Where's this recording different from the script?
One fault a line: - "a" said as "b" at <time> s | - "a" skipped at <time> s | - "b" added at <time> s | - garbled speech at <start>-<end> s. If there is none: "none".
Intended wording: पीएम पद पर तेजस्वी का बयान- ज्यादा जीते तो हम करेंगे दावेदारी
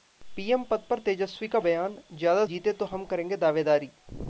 none